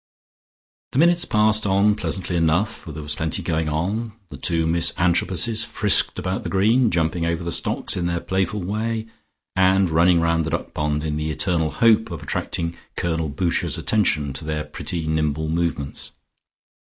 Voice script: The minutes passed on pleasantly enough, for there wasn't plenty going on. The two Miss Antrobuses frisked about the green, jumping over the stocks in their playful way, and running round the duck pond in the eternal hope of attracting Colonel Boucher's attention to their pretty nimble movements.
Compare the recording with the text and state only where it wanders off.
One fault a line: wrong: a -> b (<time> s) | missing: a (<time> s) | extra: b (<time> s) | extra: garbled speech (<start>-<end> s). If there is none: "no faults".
wrong: wasn't -> was (3.0 s)